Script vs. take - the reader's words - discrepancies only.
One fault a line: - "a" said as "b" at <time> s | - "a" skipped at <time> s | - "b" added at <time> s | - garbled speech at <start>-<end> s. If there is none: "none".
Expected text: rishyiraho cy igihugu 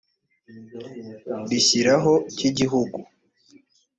none